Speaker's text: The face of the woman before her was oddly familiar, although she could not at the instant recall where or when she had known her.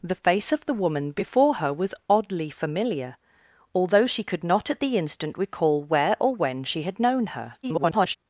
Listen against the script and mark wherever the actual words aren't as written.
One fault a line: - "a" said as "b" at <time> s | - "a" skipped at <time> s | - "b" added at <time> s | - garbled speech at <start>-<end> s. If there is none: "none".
- garbled speech at 7.6-8.2 s